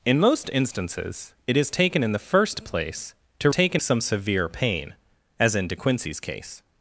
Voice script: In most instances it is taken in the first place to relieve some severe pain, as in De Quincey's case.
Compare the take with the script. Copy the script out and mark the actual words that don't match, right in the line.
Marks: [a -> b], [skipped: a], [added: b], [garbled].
In most instances it is taken in the first place to [relieve -> taken] some severe pain, as in De Quincey's case.